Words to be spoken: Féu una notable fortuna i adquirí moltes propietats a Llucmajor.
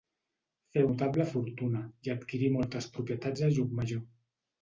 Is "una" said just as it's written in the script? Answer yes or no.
no